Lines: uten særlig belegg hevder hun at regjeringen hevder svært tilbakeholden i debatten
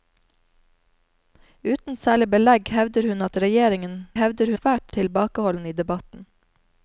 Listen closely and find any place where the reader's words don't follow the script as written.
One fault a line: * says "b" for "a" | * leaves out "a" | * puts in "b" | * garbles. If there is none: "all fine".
all fine